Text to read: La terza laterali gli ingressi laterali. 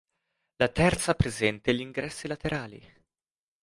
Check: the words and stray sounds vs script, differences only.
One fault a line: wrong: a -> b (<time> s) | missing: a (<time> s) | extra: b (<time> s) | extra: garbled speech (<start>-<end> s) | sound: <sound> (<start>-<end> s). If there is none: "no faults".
wrong: laterali -> presente (1.1 s)